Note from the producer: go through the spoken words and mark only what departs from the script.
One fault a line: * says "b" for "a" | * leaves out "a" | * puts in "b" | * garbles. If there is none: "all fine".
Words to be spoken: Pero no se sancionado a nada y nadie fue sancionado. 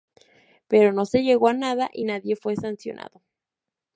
* says "llegó" for "sancionado"